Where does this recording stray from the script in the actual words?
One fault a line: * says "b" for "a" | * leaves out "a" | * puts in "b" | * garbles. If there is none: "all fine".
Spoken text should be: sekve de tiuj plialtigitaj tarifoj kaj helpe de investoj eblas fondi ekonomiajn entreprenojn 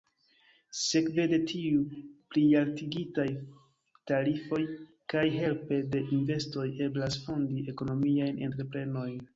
all fine